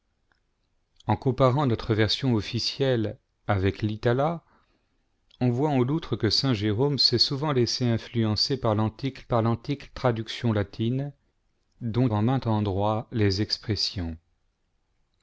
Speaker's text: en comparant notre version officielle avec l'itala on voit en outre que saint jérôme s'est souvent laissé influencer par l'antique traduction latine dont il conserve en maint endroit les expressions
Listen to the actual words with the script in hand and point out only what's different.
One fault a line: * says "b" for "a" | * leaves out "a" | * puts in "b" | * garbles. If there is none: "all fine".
* puts in "par l'antique"
* leaves out "il conserve"